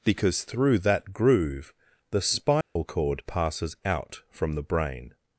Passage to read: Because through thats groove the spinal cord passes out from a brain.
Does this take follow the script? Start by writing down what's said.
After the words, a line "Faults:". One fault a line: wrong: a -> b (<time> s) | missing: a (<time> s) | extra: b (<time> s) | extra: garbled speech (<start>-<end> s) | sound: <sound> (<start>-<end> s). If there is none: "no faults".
Because through that groove the spinal cord passes out from the brain.
Faults:
wrong: thats -> that (0.8 s)
sound: dropout (2.6-2.8 s)
wrong: a -> the (4.5 s)